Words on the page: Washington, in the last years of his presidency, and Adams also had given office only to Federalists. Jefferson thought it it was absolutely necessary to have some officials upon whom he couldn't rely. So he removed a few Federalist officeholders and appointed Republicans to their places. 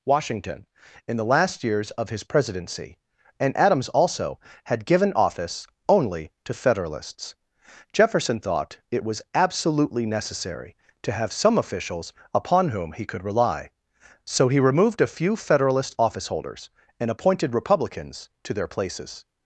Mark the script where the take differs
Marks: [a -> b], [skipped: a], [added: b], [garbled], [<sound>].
Washington, in the last years of his presidency, and Adams also had given office only to Federalists. Jefferson thought it [skipped: it] was absolutely necessary to have some officials upon whom he [couldn't -> could] rely. So he removed a few Federalist officeholders and appointed Republicans to their places.